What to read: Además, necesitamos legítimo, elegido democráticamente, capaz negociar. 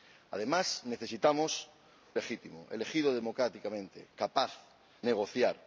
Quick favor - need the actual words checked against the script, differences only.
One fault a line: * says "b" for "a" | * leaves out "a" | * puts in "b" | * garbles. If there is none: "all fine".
all fine